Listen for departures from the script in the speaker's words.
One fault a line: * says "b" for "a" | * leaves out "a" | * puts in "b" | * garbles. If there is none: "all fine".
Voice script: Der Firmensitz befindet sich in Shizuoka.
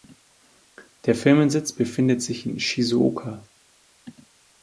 all fine